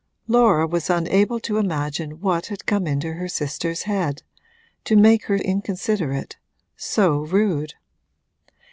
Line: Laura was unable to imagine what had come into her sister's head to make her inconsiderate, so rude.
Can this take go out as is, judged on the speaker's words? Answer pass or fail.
pass